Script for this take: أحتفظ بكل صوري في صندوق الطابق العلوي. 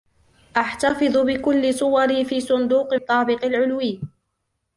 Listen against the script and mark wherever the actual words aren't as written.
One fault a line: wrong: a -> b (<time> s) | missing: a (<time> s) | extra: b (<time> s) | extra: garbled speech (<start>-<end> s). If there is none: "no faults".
no faults